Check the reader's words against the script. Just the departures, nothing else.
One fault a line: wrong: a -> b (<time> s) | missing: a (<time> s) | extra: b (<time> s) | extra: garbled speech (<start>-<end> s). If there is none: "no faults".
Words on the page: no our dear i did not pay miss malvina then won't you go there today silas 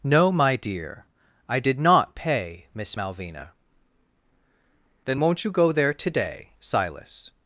wrong: our -> my (0.3 s)